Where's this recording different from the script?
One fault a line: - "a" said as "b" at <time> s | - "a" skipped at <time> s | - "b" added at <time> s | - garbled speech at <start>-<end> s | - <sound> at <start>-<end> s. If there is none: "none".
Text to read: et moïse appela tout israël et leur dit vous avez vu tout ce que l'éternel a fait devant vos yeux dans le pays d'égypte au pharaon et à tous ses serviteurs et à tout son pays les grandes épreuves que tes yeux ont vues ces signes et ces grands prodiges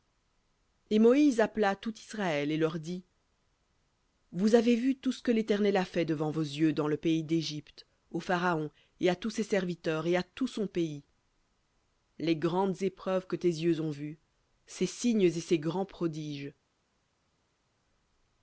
none